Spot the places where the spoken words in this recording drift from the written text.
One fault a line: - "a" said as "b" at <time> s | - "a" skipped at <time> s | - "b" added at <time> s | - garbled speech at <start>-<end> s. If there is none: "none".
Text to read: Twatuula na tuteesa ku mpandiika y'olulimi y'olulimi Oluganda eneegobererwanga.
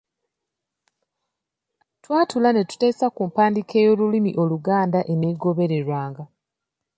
- "na" said as "ne" at 2.5 s
- "y'olulimi" skipped at 4.3 s